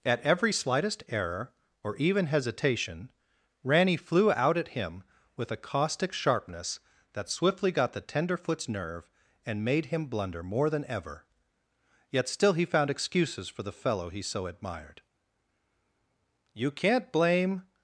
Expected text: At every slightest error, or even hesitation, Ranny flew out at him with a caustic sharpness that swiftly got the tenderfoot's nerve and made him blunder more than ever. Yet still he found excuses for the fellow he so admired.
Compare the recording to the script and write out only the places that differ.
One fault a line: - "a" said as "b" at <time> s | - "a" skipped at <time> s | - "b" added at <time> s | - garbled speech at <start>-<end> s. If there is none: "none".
- "You can't blame" added at 16.5 s